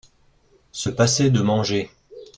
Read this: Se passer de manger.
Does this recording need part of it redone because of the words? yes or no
no